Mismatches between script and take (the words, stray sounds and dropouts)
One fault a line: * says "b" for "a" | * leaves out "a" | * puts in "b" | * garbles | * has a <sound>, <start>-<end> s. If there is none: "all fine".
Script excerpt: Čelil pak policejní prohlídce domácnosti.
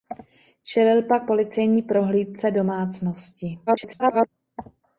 * garbles